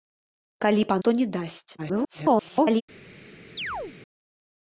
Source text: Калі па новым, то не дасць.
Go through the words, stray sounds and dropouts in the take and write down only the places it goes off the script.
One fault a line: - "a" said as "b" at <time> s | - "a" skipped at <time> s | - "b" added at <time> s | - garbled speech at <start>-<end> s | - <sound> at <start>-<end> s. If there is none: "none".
- "новым" skipped at 1.0 s
- garbled speech at 1.8-2.8 s
- chirp at 3.6-4.0 s